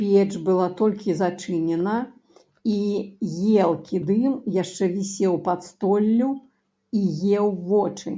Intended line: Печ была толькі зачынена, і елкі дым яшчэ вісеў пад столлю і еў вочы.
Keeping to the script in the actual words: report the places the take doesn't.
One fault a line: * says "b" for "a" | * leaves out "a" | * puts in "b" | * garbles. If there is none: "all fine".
all fine